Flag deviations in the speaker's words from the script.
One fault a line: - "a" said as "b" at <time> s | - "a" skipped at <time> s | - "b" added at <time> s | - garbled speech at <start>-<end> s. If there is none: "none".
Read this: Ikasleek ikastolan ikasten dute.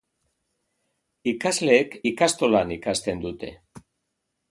none